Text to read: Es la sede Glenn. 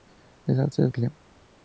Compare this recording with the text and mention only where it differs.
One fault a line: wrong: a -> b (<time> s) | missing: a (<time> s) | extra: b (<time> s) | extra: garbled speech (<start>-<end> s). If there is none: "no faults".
no faults